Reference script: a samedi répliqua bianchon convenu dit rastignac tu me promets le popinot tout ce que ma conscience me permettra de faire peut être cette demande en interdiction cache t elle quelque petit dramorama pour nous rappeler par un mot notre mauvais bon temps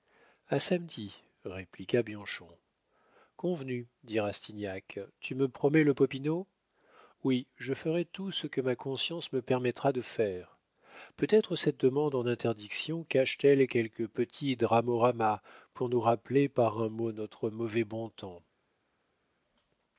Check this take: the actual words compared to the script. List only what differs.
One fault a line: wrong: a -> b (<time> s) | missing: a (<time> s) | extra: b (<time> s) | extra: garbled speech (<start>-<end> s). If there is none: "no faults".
extra: oui je ferai (7.2 s)